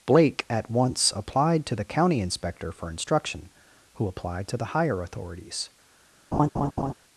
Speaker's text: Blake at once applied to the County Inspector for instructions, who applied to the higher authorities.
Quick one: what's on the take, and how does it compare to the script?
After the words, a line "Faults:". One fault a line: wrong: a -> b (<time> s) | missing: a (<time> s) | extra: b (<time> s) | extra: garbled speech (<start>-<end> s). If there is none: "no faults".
Blake at once applied to the County Inspector for instruction, who applied to the higher authorities.
Faults:
wrong: instructions -> instruction (2.9 s)